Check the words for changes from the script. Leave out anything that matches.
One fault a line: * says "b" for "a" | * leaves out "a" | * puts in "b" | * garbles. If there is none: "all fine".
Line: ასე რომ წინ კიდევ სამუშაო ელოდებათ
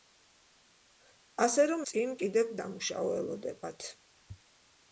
all fine